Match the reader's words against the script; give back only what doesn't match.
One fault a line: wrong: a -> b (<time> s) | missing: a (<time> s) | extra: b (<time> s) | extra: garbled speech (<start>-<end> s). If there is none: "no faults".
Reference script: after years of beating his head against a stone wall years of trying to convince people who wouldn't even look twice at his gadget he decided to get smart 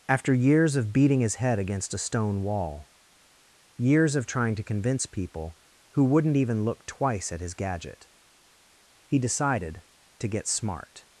no faults